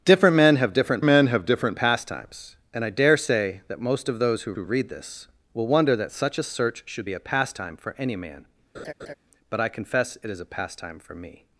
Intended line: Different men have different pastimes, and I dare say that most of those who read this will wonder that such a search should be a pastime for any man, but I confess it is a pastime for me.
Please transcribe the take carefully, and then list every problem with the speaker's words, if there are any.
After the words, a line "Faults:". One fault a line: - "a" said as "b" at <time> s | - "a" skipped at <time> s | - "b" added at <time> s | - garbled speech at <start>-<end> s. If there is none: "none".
Different men have different men have different pastimes, and I dare say that most of those who who read this will wonder that such a search should be a pastime for any man, but I confess it is a pastime for me.
Faults:
- "men have different" added at 1.0 s
- "who" added at 4.5 s